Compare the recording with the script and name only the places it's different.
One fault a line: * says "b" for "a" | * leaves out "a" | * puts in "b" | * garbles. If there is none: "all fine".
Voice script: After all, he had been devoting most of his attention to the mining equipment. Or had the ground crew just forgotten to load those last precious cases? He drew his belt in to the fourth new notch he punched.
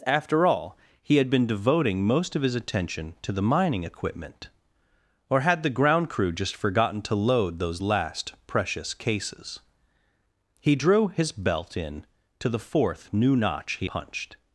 all fine